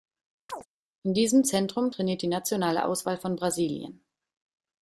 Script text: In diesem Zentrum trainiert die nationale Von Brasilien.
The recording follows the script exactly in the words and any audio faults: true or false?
false